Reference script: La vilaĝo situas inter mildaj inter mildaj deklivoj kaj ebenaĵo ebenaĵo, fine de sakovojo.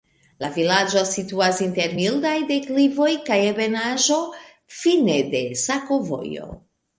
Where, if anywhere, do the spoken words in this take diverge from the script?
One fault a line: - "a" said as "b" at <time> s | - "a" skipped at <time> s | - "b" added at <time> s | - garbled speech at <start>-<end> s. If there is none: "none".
- "inter mildaj" skipped at 2.3 s
- "ebenaĵo" skipped at 4.2 s